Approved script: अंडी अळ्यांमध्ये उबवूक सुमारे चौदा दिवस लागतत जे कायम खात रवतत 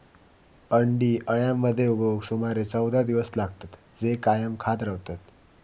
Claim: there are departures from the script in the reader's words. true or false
false